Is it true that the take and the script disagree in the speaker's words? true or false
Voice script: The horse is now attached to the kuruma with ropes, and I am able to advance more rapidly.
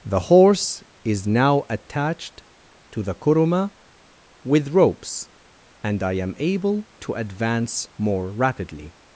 false